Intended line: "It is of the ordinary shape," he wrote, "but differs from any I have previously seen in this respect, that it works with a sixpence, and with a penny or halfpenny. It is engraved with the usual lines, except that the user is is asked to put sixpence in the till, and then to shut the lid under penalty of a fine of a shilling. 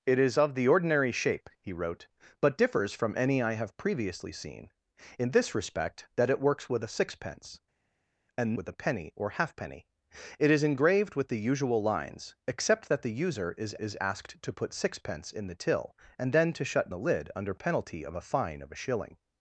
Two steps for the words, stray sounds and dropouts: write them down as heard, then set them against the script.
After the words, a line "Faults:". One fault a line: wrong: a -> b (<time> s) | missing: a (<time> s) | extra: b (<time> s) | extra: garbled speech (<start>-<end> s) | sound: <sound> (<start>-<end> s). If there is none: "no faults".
"It is of the ordinary shape," he wrote, "but differs from any I have previously seen in this respect, that it works with a sixpence, and with a penny or halfpenny. It is engraved with the usual lines, except that the user is is asked to put sixpence in the till, and then to shut the lid under penalty of a fine of a shilling.
Faults:
no faults